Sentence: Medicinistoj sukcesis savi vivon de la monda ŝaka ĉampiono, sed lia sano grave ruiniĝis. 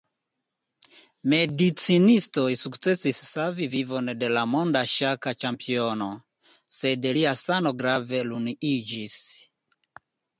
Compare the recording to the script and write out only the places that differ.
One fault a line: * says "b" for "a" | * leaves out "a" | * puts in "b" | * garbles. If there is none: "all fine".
all fine